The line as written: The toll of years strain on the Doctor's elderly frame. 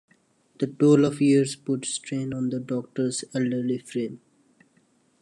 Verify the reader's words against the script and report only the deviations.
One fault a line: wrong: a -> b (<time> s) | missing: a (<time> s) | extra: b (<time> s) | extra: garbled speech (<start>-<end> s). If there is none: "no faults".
extra: put (1.6 s)